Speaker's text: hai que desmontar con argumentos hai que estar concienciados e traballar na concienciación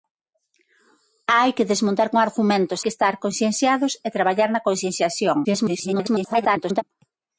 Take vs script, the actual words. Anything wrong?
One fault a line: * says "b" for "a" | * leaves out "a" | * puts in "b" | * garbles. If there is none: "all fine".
* leaves out "hai"
* garbles